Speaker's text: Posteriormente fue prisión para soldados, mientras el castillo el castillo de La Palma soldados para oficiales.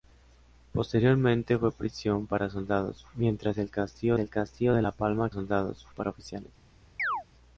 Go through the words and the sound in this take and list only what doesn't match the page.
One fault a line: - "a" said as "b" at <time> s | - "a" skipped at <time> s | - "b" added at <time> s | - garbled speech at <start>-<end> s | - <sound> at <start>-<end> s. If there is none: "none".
- chirp at 7.0-7.2 s